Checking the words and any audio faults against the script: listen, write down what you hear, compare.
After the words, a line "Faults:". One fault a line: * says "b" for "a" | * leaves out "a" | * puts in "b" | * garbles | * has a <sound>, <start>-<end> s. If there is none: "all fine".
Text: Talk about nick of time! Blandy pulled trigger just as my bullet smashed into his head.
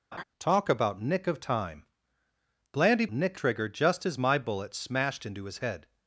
Talk about nick of time! Blandy nick trigger just as my bullet smashed into his head.
Faults:
* has a laugh, 0.1-0.2 s
* says "nick" for "pulled"